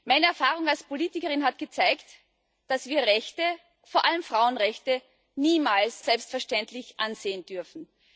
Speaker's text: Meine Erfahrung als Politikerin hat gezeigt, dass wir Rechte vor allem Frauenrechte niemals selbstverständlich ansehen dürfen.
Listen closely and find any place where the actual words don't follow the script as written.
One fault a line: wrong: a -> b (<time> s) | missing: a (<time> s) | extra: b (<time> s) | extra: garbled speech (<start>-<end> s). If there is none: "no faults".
no faults